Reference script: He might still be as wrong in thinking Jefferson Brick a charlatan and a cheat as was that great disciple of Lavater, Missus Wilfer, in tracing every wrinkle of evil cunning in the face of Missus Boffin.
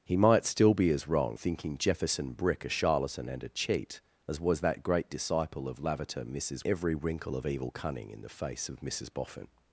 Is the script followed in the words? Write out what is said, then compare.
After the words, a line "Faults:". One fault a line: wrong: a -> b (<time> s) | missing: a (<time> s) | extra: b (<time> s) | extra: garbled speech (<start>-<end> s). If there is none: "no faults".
He might still be as wrong thinking Jefferson Brick a charlatan and a cheat as was that great disciple of Lavater, Missus Every wrinkle of evil cunning in the face of Missus Boffin.
Faults:
missing: in (1.4 s)
missing: Wilfer in tracing (6.6 s)